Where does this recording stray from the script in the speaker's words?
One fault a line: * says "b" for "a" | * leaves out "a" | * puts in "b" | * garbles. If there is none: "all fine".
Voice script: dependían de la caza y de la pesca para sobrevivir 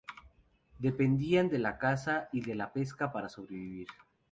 all fine